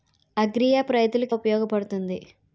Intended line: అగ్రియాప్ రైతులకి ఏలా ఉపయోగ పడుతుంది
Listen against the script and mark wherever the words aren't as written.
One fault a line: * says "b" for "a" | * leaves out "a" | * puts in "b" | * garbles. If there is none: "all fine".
* leaves out "ఏలా"